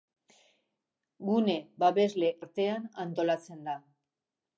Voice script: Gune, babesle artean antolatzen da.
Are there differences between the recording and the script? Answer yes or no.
no